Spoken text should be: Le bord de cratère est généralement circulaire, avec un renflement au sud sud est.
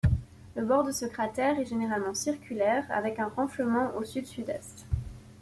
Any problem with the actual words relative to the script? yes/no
yes